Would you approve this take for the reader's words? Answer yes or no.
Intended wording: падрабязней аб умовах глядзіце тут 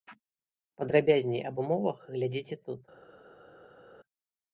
yes